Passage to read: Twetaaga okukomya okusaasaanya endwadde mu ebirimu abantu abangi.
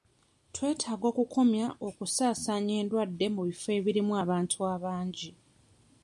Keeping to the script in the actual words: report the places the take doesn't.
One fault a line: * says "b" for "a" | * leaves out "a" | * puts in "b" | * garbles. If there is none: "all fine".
* puts in "bifo"